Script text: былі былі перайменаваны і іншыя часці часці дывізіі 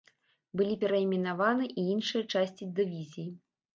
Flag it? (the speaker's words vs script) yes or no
yes